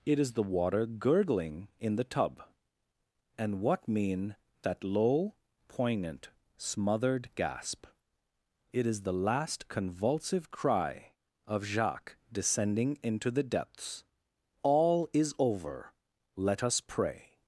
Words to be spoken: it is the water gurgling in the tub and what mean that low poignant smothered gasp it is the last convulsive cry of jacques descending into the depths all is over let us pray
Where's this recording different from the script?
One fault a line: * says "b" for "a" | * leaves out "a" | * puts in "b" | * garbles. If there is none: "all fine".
all fine